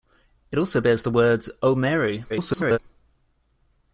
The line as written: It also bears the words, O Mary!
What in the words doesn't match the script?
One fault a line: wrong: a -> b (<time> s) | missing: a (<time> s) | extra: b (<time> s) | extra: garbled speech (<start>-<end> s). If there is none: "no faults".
extra: garbled speech (2.3-2.8 s)